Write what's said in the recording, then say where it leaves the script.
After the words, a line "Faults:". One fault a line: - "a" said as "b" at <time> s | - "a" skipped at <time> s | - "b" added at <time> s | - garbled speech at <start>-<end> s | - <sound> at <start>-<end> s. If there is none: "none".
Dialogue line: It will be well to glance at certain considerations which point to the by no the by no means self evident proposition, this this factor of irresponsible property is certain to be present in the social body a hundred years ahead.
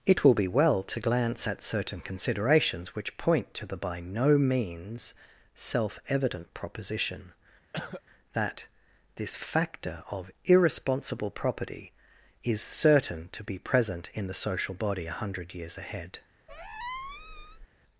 It will be well to glance at certain considerations which point to the by no means self evident proposition, that this factor of irresponsible property is certain to be present in the social body a hundred years ahead.
Faults:
- "the by no" skipped at 4.4 s
- cough at 7.7-8.0 s
- "this" said as "that" at 8.3 s
- squeak at 16.5-17.7 s